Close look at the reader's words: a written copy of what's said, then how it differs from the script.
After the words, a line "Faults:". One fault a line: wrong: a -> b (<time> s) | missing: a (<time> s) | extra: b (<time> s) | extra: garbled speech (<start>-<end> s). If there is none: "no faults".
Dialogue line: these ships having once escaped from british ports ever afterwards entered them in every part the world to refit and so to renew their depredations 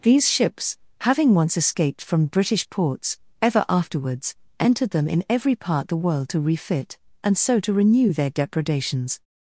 these ships having once escaped from british ports ever afterwards entered them in every part the world to refit and so to renew their depredations
Faults:
no faults